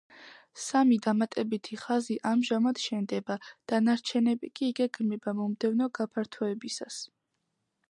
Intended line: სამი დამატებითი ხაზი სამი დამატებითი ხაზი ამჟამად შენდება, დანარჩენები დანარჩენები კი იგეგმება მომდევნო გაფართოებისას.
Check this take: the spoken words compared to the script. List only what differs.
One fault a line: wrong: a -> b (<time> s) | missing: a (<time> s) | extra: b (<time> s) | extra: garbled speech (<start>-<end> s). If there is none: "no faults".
missing: სამი დამატებითი ხაზი (2.2 s)
missing: დანარჩენები (4.5 s)